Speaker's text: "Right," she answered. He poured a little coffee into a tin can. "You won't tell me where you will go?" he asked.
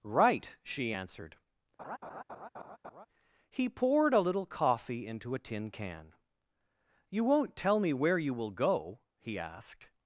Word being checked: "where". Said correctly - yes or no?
yes